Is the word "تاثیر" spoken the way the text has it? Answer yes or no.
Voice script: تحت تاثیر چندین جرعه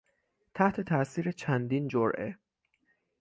yes